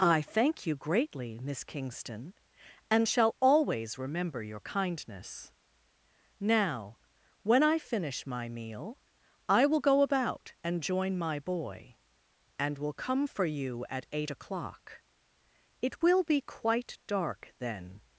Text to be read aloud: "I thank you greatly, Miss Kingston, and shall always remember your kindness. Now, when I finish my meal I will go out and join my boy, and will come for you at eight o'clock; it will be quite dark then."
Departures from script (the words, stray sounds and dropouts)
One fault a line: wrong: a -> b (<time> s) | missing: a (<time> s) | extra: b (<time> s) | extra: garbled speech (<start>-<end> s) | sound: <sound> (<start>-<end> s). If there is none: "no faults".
wrong: out -> about (10.0 s)